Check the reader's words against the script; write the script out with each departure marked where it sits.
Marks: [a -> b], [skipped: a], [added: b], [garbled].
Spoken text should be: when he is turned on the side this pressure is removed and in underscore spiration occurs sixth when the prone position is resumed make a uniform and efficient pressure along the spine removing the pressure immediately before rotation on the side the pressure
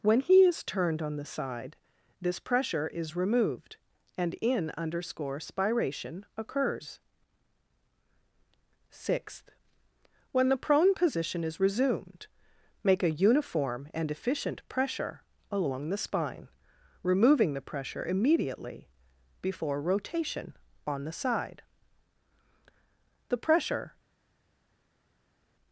when he is turned on the side this pressure is removed and in underscore spiration occurs sixth when the prone position is resumed make a uniform and efficient pressure along the spine removing the pressure immediately before rotation on the side the pressure